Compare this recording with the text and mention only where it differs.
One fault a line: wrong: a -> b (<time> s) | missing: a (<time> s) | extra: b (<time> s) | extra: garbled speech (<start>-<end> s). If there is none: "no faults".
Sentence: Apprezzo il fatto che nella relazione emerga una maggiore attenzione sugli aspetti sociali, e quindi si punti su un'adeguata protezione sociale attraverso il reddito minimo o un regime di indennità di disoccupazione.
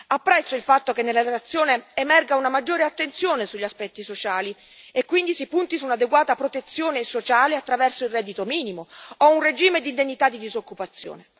no faults